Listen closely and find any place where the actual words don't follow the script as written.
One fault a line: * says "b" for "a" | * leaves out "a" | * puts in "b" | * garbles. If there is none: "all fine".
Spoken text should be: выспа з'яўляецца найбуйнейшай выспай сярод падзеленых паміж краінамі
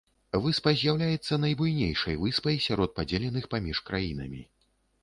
all fine